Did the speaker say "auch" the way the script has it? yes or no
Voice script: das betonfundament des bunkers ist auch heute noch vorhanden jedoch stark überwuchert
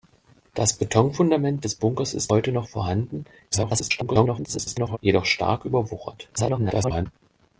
no